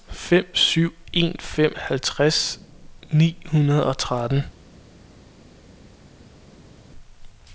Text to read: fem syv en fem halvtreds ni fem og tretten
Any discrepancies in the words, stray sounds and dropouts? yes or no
yes